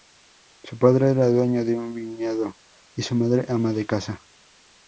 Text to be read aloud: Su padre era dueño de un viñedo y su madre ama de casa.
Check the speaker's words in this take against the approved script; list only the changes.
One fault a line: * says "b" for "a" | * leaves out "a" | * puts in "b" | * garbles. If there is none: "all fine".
all fine